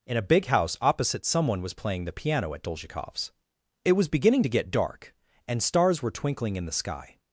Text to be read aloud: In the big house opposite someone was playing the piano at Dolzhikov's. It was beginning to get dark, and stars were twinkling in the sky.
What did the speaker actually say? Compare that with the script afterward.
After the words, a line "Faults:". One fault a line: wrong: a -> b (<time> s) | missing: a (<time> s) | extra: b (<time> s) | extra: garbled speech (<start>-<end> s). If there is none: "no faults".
In a big house opposite someone was playing the piano at Dolzhikov's. It was beginning to get dark, and stars were twinkling in the sky.
Faults:
wrong: the -> a (0.2 s)